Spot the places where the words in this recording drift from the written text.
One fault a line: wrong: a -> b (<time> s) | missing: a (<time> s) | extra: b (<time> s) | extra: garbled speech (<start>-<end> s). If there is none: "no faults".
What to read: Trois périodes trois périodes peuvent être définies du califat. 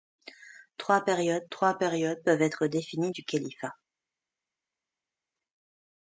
no faults